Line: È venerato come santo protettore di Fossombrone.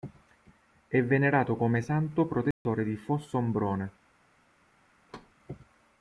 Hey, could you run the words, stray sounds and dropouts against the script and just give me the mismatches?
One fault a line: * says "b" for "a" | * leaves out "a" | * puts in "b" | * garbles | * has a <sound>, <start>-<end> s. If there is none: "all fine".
* has a dropout, 2.5-2.7 s
* has a thud, 5.1-5.3 s